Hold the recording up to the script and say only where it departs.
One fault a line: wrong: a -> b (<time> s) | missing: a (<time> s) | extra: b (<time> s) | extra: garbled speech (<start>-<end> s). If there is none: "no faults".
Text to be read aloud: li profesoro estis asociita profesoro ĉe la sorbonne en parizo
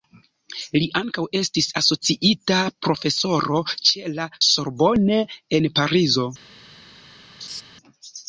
wrong: profesoro -> ankaŭ (1.0 s)